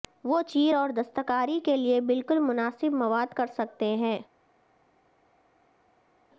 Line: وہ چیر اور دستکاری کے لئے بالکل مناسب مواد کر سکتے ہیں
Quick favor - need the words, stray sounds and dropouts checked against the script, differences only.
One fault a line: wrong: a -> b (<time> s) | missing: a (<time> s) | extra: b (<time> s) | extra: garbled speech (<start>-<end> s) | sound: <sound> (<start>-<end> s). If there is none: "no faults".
no faults